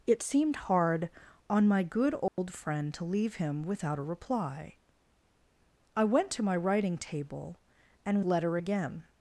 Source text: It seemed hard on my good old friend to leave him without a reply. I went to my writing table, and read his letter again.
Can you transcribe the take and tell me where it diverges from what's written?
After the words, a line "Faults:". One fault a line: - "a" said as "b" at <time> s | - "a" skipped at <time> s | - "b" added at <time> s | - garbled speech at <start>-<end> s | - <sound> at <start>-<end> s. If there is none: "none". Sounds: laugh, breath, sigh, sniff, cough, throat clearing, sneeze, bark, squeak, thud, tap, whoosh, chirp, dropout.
It seemed hard on my good old friend to leave him without a reply. I went to my writing table, and letter again.
Faults:
- dropout at 2.3-2.4 s
- "read his" skipped at 8.2 s